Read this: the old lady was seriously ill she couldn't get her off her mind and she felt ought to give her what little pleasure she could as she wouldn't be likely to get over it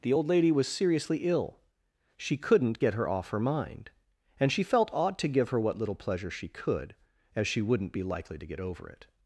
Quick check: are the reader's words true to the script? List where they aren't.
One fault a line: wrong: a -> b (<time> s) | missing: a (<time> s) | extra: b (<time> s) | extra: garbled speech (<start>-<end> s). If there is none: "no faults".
no faults